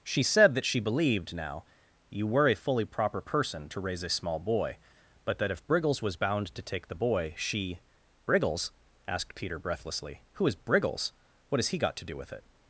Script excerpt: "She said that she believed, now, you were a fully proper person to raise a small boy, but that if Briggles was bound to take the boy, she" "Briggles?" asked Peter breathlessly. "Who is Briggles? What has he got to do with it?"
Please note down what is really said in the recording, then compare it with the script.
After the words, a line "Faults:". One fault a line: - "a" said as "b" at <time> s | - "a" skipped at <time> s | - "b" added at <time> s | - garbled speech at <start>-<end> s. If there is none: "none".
"She said that she believed, now, you were a fully proper person to raise a small boy, but that if Briggles was bound to take the boy, she" "Briggles?" asked Peter breathlessly. "Who is Briggles? What has he got to do with it?"
Faults:
none